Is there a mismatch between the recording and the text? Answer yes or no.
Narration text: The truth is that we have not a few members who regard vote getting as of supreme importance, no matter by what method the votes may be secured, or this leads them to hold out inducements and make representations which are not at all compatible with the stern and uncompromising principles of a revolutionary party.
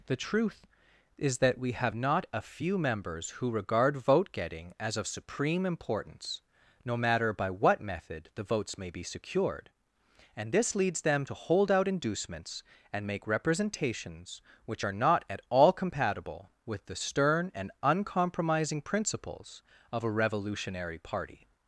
yes